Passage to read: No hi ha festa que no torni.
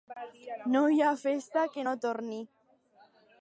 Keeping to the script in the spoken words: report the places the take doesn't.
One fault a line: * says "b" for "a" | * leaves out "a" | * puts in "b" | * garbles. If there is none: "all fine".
all fine